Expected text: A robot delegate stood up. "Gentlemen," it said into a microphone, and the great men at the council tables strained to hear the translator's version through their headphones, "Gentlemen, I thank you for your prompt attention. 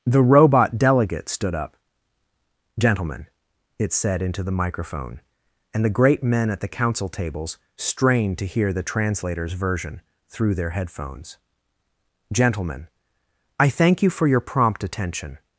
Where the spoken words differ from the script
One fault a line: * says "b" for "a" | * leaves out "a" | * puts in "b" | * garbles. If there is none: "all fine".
* says "The" for "A"
* says "the" for "a"